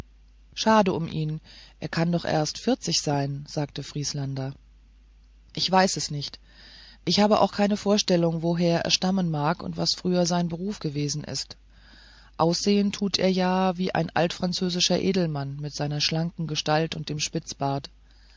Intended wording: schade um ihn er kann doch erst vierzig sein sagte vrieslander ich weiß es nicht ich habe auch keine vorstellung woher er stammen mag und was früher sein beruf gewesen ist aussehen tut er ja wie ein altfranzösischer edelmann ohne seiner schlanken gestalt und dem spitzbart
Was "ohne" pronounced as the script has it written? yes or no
no